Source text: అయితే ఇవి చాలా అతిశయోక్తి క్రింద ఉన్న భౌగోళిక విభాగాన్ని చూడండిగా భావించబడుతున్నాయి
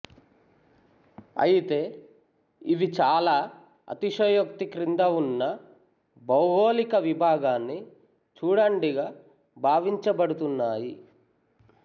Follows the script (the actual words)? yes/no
yes